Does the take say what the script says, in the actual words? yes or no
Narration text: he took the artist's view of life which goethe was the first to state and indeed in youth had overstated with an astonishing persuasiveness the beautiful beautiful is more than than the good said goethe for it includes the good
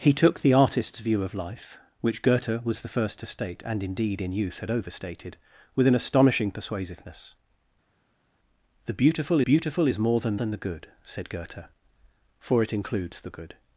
yes